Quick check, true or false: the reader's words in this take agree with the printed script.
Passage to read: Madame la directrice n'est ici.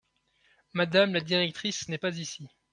false